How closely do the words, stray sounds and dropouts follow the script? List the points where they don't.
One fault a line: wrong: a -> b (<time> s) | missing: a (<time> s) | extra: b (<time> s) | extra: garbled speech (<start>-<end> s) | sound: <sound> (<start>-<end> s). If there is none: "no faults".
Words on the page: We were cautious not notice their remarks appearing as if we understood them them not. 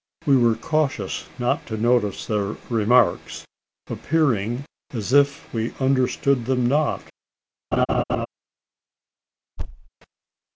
extra: to (1.7 s)
missing: them (6.7 s)
sound: laugh (7.7-8.3 s)
sound: thud (9.6-9.9 s)